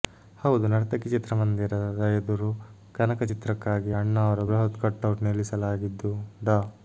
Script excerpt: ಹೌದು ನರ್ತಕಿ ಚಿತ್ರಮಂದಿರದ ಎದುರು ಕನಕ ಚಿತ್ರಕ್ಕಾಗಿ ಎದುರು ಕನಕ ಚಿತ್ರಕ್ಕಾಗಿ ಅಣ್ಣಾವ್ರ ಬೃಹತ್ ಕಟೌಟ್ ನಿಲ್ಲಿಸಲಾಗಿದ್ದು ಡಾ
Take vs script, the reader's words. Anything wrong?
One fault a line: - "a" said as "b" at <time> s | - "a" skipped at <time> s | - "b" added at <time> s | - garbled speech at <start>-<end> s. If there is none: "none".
- "ಎದುರು ಕನಕ ಚಿತ್ರಕ್ಕಾಗಿ" skipped at 3.9 s